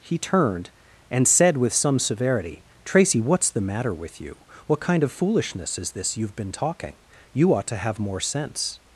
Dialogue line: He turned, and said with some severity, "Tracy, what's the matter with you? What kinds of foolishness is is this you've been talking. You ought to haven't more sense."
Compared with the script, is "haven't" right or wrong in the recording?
wrong